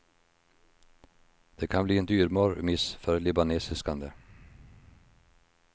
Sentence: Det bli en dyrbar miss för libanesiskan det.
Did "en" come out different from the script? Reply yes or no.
no